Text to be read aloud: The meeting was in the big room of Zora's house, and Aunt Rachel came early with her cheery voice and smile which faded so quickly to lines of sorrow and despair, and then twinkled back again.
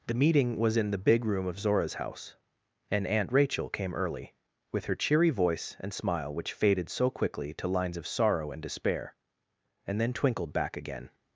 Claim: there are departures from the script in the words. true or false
false